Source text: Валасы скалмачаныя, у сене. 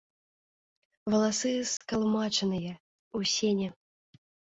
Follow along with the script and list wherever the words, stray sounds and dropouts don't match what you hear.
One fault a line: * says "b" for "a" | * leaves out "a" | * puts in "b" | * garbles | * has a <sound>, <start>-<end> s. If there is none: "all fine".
* has a dropout, 1.8-1.8 s